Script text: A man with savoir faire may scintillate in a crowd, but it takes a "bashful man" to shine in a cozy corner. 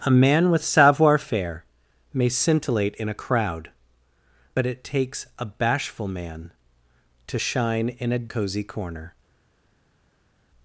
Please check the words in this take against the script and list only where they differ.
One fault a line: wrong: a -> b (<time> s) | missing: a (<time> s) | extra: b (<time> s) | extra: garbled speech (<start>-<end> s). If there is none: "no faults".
no faults